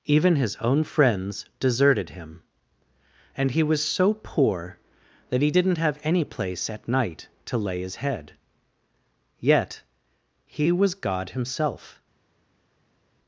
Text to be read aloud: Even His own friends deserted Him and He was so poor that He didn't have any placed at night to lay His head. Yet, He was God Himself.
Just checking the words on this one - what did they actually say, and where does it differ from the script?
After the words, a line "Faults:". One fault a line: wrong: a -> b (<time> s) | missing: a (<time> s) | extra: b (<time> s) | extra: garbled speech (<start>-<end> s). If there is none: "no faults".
Even His own friends deserted Him and He was so poor that He didn't have any place at night to lay His head. Yet, He was God Himself.
Faults:
wrong: placed -> place (6.2 s)